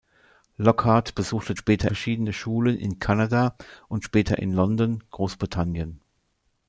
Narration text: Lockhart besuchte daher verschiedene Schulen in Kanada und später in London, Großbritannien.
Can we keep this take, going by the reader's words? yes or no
no